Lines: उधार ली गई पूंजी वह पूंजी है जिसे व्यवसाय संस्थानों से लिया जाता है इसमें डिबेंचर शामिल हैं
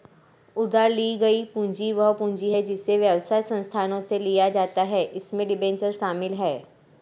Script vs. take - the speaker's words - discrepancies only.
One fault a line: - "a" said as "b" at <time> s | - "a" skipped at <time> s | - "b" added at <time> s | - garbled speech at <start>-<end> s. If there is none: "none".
none